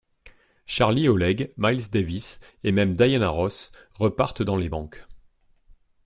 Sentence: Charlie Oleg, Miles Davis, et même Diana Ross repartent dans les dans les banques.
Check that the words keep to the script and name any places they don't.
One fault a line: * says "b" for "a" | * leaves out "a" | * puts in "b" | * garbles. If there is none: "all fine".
* leaves out "dans les"